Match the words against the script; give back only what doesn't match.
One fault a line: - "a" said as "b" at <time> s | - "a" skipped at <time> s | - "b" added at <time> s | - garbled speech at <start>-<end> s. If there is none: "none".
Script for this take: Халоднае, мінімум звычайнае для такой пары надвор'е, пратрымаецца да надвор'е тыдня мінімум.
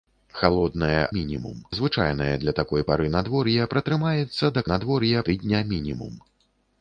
none